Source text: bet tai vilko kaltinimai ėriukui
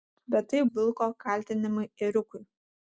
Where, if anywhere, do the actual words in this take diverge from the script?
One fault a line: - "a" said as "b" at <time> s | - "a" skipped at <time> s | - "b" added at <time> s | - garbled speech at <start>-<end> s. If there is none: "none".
none